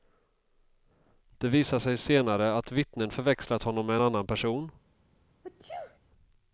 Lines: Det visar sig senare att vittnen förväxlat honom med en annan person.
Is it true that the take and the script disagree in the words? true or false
false